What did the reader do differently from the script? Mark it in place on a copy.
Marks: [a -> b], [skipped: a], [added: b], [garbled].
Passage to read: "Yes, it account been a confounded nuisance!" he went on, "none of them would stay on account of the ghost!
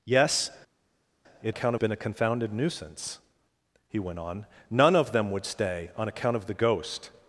"Yes, it account been a confounded nuisance!" he went on, "none of them would stay on account of the ghost!